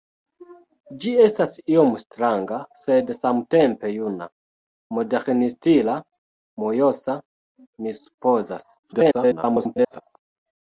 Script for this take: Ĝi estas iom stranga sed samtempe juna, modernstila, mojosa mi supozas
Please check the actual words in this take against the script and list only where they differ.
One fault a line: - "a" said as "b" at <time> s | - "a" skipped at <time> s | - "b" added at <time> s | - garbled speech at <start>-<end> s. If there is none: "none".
- garbled speech at 8.8-10.0 s